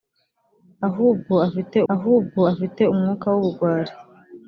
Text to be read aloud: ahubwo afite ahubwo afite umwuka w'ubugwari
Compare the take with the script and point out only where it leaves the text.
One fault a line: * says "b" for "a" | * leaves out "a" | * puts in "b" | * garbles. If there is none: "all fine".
all fine